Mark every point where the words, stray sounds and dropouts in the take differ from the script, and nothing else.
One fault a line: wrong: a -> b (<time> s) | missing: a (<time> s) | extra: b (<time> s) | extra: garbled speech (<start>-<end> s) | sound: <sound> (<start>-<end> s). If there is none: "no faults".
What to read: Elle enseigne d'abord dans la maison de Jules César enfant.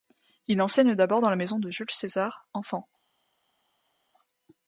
wrong: Elle -> Il (0.5 s)